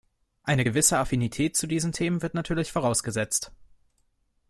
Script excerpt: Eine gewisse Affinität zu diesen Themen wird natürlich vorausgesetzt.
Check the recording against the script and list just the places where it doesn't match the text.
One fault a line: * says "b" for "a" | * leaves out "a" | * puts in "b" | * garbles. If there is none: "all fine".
all fine